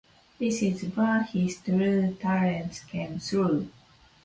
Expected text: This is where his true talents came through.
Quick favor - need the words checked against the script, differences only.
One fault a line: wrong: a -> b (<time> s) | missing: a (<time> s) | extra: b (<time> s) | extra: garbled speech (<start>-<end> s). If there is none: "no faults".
no faults